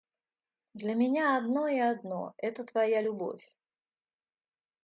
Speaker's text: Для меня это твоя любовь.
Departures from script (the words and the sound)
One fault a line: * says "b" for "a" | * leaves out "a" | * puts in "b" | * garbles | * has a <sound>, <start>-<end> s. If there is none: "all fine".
* puts in "одно и одно"